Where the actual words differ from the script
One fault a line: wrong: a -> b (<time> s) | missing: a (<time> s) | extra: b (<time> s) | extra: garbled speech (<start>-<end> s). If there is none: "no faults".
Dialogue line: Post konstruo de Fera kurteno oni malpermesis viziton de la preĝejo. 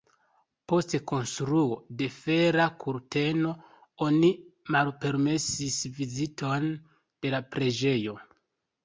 no faults